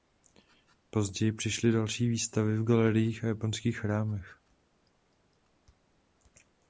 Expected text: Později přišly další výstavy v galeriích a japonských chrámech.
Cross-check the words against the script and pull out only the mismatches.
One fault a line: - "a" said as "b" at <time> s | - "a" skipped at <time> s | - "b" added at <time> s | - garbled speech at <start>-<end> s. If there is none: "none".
none